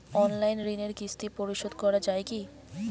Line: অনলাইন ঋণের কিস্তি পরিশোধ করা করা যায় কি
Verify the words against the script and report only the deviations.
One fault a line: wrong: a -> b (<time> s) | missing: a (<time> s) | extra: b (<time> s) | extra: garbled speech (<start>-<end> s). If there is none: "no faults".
missing: করা (2.0 s)